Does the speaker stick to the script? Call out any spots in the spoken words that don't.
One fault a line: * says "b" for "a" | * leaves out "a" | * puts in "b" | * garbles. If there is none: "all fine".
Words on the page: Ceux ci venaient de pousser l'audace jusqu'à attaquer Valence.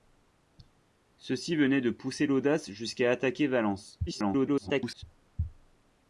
* garbles